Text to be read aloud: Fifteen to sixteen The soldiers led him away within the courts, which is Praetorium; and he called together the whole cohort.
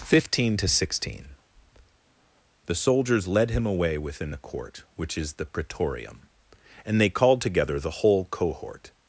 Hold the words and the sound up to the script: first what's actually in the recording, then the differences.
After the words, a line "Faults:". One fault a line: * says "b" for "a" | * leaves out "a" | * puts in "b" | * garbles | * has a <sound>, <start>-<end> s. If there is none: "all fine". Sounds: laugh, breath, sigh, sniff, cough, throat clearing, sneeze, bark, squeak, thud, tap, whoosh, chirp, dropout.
Fifteen to sixteen The soldiers led him away within the court, which is the Praetorium; and they called together the whole cohort.
Faults:
* says "court" for "courts"
* puts in "the"
* says "they" for "he"